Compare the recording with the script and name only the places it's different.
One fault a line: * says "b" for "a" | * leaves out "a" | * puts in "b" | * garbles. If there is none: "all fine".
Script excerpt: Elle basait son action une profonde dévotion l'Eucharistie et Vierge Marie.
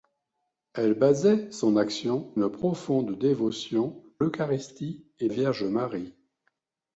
all fine